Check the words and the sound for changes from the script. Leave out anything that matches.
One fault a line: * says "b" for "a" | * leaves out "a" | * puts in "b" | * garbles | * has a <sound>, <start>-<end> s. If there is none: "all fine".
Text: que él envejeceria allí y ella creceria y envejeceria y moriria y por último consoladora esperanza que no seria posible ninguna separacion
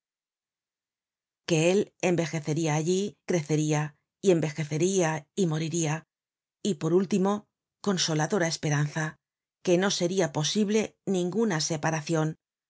* leaves out "y ella"